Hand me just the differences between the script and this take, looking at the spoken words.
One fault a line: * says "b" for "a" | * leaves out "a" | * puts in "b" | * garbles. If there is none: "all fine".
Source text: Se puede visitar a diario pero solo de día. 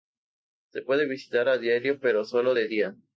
all fine